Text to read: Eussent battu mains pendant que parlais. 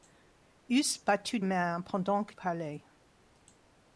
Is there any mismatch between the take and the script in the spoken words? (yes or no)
no